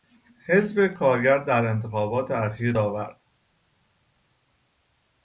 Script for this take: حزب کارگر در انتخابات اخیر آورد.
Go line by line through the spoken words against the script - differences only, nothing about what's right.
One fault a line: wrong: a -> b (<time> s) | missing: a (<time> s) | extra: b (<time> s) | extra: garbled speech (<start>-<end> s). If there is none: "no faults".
no faults